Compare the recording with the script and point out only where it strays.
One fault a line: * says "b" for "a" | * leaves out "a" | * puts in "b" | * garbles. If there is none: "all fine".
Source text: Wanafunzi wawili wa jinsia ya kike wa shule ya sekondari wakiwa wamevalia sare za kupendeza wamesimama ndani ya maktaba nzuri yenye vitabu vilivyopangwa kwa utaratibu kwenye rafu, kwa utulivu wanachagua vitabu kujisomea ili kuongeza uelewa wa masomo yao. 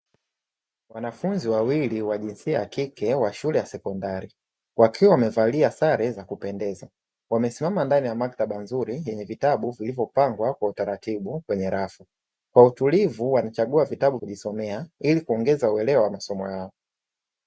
all fine